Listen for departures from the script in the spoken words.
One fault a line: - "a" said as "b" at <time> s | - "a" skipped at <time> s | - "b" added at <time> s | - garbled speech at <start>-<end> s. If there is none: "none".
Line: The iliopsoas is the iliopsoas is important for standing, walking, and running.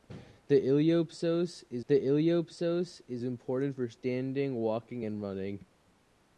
none